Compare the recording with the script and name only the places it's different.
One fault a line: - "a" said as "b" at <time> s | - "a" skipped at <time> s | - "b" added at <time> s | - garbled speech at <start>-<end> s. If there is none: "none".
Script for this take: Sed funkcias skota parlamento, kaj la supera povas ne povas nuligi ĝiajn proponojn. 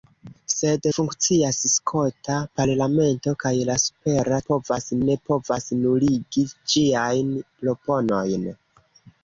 none